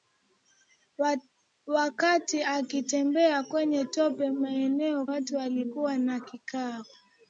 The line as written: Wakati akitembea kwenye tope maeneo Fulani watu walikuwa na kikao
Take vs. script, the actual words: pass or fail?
fail